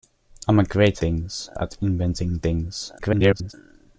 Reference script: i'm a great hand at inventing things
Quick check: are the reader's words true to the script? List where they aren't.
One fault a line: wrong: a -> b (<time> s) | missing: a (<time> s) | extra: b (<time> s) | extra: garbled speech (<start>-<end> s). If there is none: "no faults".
wrong: hand -> things (1.0 s)
extra: garbled speech (3.0-3.5 s)